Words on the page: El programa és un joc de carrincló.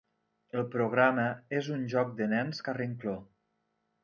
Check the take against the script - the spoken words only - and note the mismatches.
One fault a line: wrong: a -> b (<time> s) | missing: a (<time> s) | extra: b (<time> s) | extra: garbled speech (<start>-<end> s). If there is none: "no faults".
extra: nens (2.4 s)